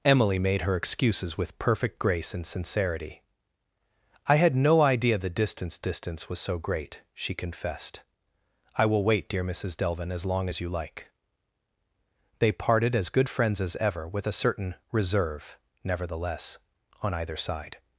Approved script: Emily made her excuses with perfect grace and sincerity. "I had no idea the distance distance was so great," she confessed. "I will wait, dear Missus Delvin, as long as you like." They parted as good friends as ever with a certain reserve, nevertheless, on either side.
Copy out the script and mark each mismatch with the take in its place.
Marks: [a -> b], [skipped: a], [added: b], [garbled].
Emily made her excuses with perfect grace and sincerity. "I had no idea the distance distance was so great," she confessed. "I will wait, dear Missus Delvin, as long as you like." They parted as good friends as ever with a certain reserve, nevertheless, on either side.